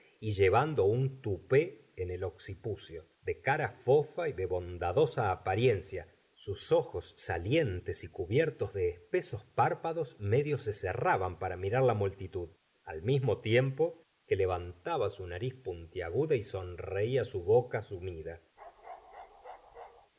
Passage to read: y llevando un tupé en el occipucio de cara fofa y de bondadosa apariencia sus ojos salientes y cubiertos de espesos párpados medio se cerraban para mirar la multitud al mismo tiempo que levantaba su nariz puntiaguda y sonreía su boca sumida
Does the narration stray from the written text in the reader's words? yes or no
no